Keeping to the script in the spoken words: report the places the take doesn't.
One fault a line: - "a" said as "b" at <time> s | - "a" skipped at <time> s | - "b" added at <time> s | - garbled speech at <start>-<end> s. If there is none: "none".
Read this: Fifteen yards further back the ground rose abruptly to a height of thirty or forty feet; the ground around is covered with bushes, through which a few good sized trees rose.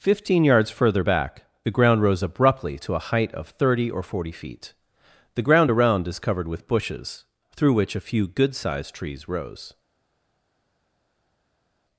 none